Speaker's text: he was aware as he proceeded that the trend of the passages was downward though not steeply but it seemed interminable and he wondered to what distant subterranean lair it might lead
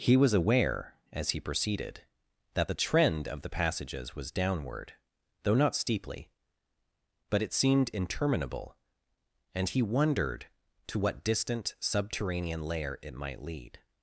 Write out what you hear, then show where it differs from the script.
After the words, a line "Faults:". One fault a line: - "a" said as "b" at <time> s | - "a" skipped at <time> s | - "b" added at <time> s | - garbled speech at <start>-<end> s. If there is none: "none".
he was aware as he proceeded that the trend of the passages was downward though not steeply but it seemed interminable and he wondered to what distant subterranean lair it might lead
Faults:
none